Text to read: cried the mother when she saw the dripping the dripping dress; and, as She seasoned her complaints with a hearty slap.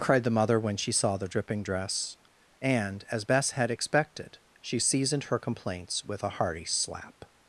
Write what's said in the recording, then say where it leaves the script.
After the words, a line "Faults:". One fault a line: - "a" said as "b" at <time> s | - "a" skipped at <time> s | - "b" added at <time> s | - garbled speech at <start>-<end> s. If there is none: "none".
cried the mother when she saw the dripping dress; and, as Bess had expected, she seasoned her complaints with a hearty slap.
Faults:
- "the dripping" skipped at 1.6 s
- "Bess had expected" added at 3.2 s